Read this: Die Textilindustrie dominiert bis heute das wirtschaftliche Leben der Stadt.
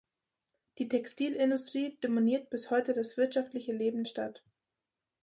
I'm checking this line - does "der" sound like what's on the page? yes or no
no